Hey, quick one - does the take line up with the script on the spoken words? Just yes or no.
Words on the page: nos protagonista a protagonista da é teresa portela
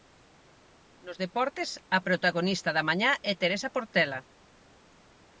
no